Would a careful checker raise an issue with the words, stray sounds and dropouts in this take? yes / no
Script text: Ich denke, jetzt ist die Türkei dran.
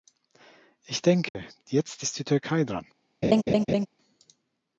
yes